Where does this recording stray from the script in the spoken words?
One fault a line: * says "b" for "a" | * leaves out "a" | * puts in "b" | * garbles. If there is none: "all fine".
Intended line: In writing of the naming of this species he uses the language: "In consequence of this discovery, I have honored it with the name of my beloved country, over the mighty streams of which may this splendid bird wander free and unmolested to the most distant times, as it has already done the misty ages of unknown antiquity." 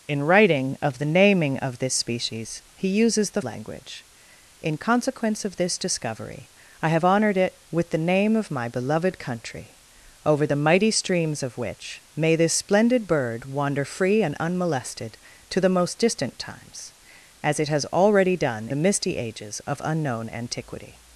all fine